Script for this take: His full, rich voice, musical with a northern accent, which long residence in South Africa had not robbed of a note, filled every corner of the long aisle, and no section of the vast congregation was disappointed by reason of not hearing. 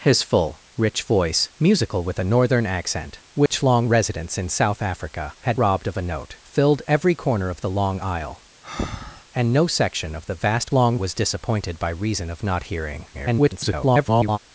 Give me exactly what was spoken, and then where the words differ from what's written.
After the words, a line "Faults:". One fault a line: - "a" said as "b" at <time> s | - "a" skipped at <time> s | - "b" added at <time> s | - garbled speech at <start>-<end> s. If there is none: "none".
His full, rich voice, musical with a northern accent, which long residence in South Africa had robbed of a note, filled every corner of the long aisle, and no section of the vast long was disappointed by reason of not hearing. [garbled]
Faults:
- "not" skipped at 5.6 s
- "congregation" said as "long" at 10.7 s
- garbled speech at 13.1-14.4 s